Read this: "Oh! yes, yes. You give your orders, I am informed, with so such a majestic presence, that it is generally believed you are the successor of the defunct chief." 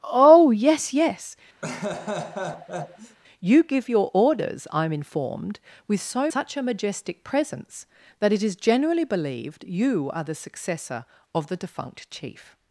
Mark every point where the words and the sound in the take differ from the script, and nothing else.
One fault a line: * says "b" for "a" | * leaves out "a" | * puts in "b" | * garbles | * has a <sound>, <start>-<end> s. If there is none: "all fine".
* has a laugh, 1.6-3.2 s